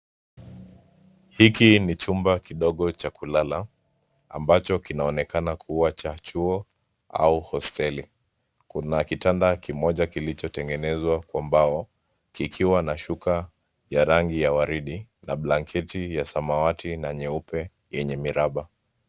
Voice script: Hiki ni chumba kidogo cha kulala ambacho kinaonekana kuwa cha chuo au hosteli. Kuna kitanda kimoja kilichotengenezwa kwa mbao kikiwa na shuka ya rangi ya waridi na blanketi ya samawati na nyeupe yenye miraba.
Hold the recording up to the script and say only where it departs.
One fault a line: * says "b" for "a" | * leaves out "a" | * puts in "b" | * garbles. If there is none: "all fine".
all fine